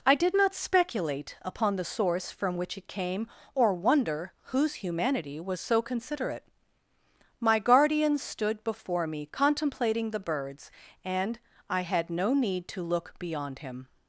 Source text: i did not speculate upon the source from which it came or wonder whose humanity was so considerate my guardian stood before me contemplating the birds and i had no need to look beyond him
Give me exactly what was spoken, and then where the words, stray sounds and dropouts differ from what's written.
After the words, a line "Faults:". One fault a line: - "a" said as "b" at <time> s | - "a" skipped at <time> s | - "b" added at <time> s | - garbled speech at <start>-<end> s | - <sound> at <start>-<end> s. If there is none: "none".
i did not speculate upon the source from which it came or wonder whose humanity was so considerate my guardian stood before me contemplating the birds and i had no need to look beyond him
Faults:
none